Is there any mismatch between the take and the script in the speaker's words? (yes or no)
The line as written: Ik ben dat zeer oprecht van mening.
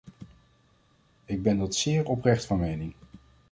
no